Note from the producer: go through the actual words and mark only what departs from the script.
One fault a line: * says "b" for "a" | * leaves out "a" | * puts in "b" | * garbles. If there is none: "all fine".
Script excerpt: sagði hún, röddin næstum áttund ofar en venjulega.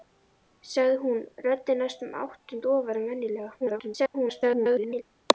* garbles